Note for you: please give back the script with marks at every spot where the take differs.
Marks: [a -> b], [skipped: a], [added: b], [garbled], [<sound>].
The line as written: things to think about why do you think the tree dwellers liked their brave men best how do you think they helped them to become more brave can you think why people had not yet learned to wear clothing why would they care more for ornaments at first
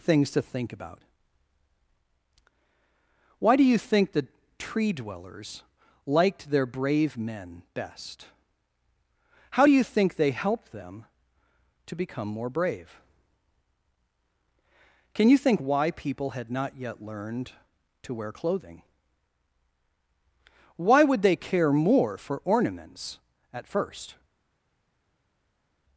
things to think about why do you think the tree dwellers liked their brave men best how do you think they helped them to become more brave can you think why people had not yet learned to wear clothing why would they care more for ornaments at first